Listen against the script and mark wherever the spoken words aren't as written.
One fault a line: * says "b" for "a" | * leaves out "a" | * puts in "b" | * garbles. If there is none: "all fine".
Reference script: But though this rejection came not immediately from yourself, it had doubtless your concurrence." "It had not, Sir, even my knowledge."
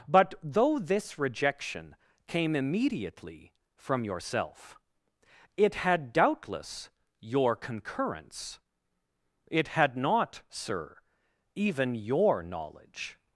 * leaves out "not"
* says "your" for "my"